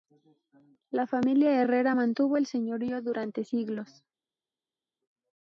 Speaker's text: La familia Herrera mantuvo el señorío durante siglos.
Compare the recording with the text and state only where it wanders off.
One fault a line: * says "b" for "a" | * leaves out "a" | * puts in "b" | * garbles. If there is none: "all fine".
all fine